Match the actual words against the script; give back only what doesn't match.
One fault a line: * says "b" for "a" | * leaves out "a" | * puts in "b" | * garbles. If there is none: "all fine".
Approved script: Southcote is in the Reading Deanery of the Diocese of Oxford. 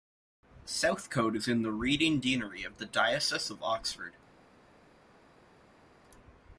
all fine